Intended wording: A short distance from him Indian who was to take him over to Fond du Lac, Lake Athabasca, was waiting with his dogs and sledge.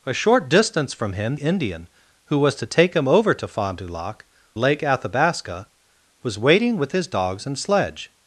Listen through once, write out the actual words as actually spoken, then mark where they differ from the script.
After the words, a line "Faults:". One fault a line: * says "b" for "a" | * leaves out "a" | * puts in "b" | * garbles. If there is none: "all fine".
A short distance from him Indian who was to take him over to Fond du Lac, Lake Athabasca, was waiting with his dogs and sledge.
Faults:
all fine